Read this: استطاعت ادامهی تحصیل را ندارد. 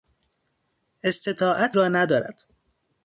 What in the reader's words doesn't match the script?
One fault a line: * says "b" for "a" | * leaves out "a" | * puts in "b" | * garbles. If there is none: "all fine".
* leaves out "ادامهی تحصیل"